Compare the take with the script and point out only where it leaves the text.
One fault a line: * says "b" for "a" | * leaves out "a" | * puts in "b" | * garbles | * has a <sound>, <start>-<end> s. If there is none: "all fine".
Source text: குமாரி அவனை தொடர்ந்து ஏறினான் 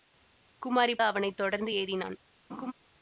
* has a laugh, 2.5-2.7 s